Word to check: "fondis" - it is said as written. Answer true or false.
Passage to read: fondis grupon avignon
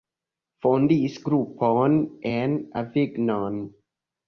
true